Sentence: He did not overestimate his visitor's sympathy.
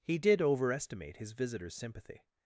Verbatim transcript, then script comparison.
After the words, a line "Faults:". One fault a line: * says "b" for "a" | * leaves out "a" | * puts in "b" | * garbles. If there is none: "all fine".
He did overestimate his visitor's sympathy.
Faults:
* leaves out "not"